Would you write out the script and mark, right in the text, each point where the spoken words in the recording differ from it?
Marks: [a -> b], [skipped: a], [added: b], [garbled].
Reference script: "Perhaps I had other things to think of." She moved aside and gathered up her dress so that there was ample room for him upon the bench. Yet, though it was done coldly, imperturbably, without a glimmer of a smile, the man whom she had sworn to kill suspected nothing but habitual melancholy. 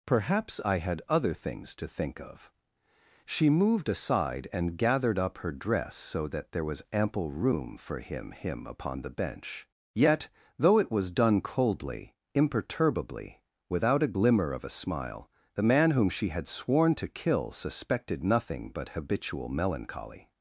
"Perhaps I had other things to think of." She moved aside and gathered up her dress so that there was ample room for him [added: him] upon the bench. Yet, though it was done coldly, imperturbably, without a glimmer of a smile, the man whom she had sworn to kill suspected nothing but habitual melancholy.